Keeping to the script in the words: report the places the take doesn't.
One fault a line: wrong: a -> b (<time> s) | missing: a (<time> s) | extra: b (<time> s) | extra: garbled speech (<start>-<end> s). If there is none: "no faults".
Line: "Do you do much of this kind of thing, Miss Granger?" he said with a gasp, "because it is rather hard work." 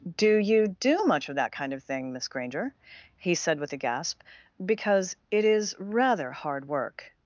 wrong: this -> that (1.4 s)